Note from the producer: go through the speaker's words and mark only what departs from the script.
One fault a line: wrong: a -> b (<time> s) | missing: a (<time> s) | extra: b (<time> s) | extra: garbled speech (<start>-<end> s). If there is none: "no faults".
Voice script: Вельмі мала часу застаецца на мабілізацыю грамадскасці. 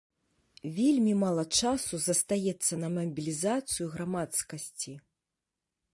no faults